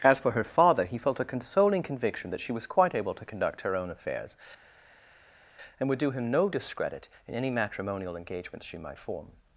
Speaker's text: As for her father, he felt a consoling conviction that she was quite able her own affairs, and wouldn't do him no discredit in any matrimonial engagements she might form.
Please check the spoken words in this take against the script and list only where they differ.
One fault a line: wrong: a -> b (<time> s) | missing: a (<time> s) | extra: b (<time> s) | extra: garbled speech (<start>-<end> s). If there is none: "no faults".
extra: to conduct (3.1 s)
wrong: wouldn't -> would (5.9 s)